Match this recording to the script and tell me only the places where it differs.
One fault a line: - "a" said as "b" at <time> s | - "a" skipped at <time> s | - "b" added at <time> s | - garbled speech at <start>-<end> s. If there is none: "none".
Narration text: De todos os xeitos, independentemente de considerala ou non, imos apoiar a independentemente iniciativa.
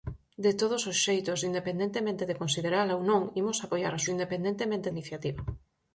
none